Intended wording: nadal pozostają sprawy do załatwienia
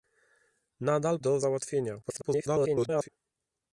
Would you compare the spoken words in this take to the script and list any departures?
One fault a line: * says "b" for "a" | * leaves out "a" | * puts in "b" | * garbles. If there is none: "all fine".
* leaves out "pozostają sprawy"
* garbles